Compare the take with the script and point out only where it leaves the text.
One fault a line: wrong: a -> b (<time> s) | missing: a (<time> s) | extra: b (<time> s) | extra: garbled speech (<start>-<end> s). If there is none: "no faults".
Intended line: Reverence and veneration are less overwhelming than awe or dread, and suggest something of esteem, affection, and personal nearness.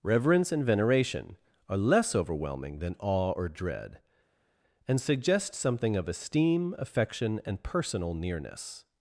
no faults